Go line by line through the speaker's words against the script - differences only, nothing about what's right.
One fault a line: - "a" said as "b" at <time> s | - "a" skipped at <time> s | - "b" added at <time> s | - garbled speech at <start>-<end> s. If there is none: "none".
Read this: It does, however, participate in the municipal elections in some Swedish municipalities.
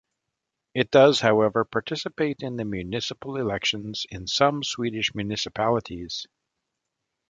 none